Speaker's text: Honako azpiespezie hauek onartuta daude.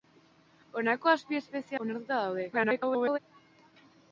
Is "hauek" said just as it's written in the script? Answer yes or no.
no